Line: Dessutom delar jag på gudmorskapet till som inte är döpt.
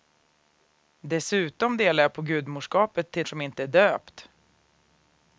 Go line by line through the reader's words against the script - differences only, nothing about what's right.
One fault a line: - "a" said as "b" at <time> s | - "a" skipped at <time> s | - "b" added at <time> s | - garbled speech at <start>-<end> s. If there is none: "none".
none